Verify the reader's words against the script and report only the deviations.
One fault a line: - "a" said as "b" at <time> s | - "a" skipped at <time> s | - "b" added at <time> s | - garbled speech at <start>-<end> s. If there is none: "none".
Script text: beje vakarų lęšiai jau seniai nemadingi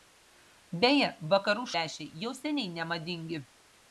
none